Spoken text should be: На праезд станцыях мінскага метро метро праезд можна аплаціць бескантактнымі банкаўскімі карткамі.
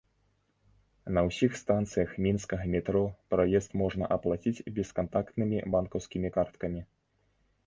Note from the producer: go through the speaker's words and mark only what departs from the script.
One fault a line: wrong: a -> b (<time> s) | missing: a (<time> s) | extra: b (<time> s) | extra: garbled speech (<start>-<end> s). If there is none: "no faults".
wrong: праезд -> ўсіх (1.3 s)
missing: метро (3.0 s)